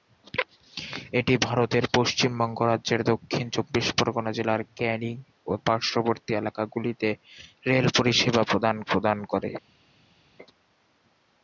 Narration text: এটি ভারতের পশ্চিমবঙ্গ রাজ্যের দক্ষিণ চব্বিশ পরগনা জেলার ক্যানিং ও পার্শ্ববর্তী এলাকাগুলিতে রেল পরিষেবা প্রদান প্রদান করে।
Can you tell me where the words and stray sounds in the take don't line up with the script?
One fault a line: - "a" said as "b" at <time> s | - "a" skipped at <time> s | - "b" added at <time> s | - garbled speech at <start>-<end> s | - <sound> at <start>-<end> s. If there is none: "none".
none